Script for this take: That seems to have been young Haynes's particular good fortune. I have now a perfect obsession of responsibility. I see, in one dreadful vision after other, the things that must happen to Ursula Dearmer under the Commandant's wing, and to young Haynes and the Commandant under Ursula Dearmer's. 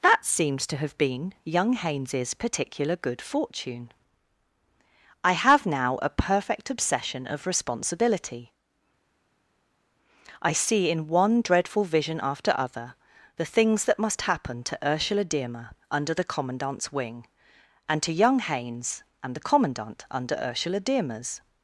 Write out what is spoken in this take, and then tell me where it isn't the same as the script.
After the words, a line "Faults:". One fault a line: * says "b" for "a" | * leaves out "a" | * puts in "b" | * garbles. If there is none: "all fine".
That seems to have been young Haynes's particular good fortune. I have now a perfect obsession of responsibility. I see, in one dreadful vision after other, the things that must happen to Ursula Dearmer under the Commandant's wing, and to young Haynes and the Commandant under Ursula Dearmer's.
Faults:
all fine